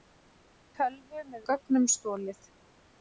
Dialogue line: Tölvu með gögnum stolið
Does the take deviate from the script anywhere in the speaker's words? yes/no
no